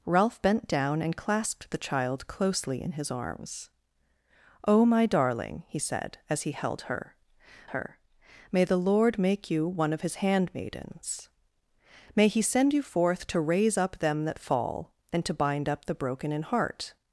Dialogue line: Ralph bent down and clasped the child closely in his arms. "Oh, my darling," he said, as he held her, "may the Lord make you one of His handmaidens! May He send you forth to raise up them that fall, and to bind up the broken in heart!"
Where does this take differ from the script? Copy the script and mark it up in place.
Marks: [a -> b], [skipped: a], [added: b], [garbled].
Ralph bent down and clasped the child closely in his arms. "Oh, my darling," he said, as he held her, [added: her] "may the Lord make you one of His handmaidens! May He send you forth to raise up them that fall, and to bind up the broken in heart!"